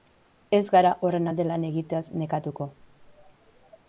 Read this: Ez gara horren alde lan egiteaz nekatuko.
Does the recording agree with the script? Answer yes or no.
yes